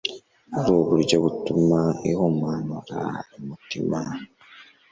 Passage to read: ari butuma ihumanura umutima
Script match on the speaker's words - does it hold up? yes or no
no